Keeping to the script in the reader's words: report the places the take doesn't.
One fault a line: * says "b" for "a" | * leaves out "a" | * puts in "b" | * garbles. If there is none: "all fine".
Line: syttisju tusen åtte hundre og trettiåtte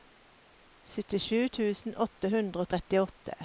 all fine